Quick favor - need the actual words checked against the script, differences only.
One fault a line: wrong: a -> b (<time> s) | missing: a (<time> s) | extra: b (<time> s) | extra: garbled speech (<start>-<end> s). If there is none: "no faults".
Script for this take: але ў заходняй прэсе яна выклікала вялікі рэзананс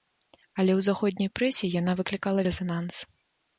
missing: вялікі (2.5 s)